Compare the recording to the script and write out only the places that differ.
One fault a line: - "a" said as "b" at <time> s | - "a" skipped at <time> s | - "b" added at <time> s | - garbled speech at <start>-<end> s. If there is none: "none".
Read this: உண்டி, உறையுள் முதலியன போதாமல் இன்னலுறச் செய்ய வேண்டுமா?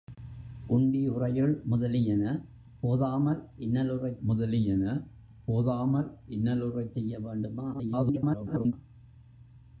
- "முதலியன போதாமல் இன்னலுறச்" added at 4.2 s
- garbled speech at 7.7-8.7 s